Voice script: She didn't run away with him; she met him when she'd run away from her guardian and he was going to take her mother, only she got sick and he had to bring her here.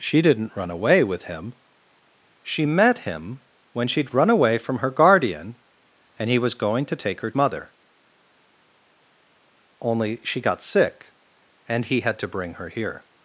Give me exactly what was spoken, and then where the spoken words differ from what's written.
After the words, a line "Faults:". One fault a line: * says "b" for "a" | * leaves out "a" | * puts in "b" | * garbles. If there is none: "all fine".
She didn't run away with him; she met him when she'd run away from her guardian and he was going to take her mother, only she got sick and he had to bring her here.
Faults:
all fine